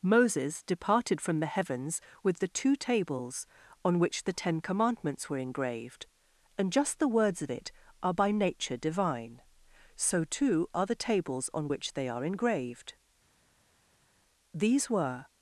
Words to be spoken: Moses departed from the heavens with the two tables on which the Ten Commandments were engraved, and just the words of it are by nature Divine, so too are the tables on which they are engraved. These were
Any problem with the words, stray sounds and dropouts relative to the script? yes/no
no